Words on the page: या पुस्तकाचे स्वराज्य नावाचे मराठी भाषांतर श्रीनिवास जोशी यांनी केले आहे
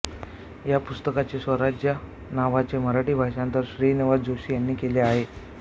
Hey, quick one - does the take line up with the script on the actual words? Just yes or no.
yes